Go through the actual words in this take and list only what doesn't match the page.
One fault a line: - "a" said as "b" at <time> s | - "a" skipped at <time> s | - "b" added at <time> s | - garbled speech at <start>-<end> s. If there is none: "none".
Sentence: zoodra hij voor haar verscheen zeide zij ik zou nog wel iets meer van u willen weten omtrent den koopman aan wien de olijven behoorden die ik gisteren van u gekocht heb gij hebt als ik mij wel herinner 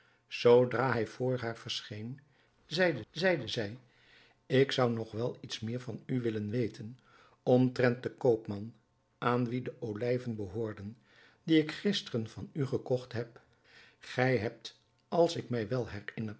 - "zeide" added at 3.1 s